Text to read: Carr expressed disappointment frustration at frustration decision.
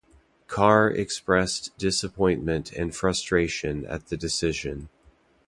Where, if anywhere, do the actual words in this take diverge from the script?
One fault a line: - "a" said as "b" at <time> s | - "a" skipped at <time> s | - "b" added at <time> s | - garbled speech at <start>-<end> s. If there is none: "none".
- "and" added at 2.7 s
- "frustration" said as "the" at 4.1 s